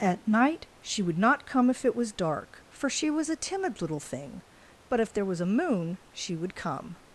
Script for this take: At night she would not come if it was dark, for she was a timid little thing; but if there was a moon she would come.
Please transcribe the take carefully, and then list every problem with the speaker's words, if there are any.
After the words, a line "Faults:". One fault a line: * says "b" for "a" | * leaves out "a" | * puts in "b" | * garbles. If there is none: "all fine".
At night she would not come if it was dark, for she was a timid little thing; but if there was a moon she would come.
Faults:
all fine